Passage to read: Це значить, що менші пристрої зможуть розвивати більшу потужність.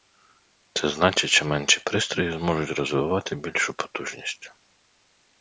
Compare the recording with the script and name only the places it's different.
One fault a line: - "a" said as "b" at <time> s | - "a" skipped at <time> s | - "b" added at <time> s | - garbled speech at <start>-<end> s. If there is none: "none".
none